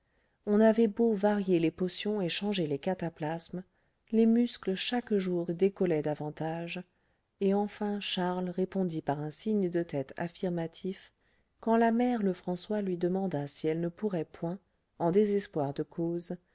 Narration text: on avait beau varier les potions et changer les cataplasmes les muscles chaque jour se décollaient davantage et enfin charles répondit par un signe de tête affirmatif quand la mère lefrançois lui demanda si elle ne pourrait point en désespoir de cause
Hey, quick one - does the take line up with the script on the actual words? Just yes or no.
no